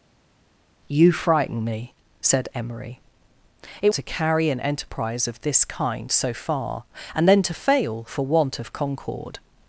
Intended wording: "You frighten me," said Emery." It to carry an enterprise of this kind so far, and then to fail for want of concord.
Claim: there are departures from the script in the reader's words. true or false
false